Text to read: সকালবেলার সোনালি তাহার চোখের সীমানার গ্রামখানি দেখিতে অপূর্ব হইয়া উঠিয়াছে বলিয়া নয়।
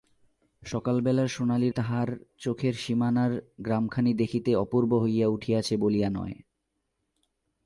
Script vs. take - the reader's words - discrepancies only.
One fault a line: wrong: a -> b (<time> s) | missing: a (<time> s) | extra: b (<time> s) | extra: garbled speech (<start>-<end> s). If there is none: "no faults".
no faults